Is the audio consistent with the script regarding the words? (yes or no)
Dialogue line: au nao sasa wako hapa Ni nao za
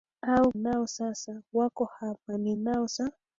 yes